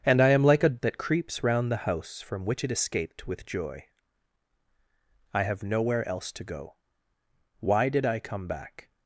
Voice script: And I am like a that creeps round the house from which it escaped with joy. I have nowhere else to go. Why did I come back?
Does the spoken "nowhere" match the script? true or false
true